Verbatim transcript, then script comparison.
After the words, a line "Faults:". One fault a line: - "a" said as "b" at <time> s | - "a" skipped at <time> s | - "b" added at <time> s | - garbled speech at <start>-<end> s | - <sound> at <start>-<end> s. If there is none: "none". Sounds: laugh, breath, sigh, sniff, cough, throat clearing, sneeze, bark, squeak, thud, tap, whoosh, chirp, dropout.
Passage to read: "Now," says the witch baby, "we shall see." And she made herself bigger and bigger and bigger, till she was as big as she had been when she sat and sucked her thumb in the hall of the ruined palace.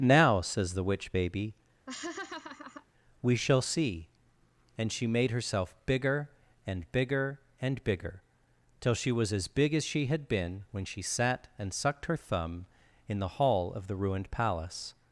"Now," says the witch baby, "we shall see." And she made herself bigger and bigger and bigger, till she was as big as she had been when she sat and sucked her thumb in the hall of the ruined palace.
Faults:
- laugh at 1.9-2.9 s